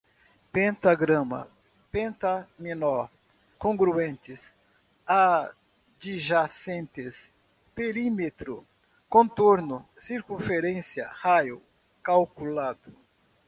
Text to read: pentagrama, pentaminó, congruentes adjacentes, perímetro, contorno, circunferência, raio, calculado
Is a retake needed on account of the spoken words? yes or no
no